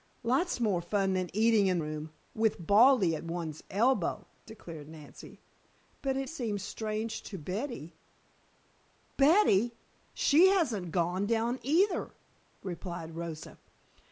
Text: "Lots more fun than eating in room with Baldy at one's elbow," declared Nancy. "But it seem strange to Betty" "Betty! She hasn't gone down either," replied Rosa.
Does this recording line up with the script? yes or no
yes